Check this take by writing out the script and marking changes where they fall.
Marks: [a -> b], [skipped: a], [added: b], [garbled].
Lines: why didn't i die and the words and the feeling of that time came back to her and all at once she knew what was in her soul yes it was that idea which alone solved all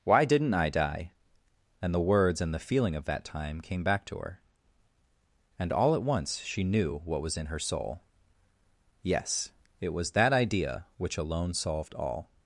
why didn't i die and the words and the feeling of that time came back to her and all at once she knew what was in her soul yes it was that idea which alone solved all